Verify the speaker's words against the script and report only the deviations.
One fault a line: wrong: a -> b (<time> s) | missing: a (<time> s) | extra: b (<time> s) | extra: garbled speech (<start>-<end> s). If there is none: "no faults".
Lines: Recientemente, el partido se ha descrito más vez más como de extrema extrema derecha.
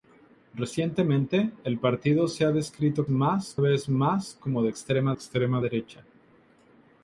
no faults